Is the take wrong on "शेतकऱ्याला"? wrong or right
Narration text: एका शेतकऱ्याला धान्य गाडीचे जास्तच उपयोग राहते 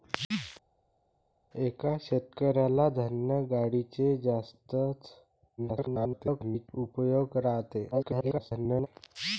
right